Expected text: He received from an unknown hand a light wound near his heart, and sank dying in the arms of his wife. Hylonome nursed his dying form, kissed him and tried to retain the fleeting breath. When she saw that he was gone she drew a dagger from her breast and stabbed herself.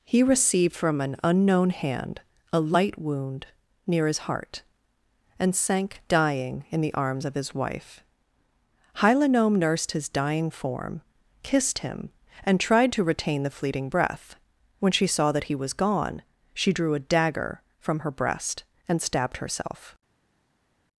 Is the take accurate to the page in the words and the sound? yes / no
yes